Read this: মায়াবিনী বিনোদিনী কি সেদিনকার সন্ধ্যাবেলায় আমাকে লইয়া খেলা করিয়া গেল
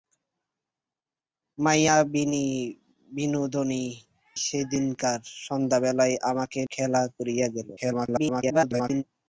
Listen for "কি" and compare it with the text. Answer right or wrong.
wrong